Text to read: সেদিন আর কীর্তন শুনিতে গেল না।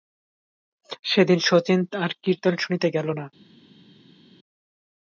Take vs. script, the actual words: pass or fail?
fail